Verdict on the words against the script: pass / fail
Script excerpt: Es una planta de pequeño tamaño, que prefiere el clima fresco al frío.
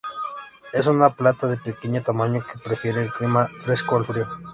pass